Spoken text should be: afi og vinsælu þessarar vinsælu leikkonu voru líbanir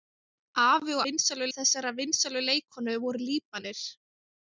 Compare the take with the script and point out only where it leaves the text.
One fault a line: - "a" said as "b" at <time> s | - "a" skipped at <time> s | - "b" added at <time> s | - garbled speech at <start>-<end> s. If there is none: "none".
none